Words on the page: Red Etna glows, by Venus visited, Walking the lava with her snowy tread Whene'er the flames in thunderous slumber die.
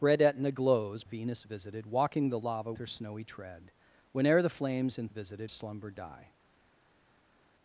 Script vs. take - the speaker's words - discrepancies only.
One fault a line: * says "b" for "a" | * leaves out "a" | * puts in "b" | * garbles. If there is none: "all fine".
* leaves out "by"
* leaves out "with"
* says "visited" for "thunderous"